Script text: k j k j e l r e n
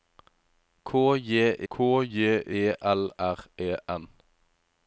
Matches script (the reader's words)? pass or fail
pass